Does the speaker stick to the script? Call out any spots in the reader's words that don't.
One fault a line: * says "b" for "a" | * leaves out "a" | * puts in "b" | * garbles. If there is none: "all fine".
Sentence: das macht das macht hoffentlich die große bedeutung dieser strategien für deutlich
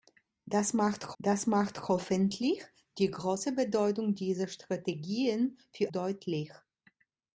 all fine